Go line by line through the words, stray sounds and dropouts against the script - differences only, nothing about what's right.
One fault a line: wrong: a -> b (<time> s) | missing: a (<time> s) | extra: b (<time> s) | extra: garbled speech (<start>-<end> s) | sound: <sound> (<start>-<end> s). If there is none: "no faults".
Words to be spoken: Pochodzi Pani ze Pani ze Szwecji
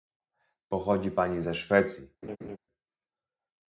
missing: Pani ze (1.5 s)
sound: laugh (2.2-2.6 s)